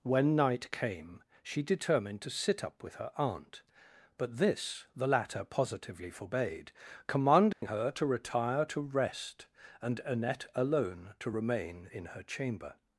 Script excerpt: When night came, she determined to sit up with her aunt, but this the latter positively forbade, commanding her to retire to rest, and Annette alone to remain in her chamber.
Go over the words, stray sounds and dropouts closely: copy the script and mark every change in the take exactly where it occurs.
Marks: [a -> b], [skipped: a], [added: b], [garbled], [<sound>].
When night came, she determined to sit up with her aunt, but this the latter positively forbade, commanding [dropout] her to retire to rest, and Annette alone to remain in her chamber.